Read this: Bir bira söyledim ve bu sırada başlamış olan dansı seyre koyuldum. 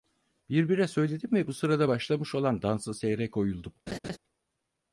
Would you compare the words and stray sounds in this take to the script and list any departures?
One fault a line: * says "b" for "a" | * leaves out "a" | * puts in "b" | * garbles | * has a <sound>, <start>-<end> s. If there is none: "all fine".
* has a laugh, 3.9-4.2 s